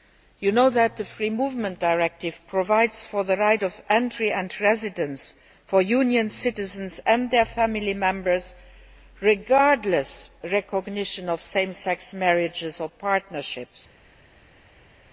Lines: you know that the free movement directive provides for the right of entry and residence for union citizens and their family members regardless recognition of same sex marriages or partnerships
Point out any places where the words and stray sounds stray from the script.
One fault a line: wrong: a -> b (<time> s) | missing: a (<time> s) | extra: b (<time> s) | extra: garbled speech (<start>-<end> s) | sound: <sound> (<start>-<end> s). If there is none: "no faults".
no faults